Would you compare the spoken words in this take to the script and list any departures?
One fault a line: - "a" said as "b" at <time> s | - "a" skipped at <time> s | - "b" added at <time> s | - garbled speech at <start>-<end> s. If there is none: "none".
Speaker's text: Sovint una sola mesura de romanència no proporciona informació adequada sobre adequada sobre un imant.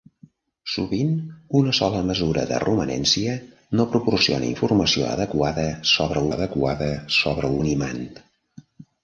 none